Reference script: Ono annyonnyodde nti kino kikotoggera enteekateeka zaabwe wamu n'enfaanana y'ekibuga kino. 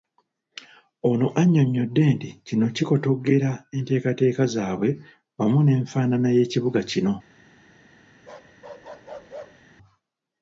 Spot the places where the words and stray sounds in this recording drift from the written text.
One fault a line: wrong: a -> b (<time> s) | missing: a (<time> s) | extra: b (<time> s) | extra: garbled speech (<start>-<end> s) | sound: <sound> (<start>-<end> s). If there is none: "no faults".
sound: bark (8.2-9.7 s)